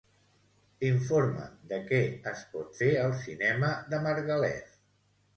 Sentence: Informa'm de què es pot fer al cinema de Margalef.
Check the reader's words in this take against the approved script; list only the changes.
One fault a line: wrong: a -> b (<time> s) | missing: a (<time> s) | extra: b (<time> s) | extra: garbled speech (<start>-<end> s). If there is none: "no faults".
no faults